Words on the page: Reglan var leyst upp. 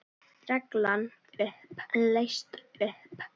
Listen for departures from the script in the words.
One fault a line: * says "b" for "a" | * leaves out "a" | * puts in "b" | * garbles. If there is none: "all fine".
* says "upp" for "var"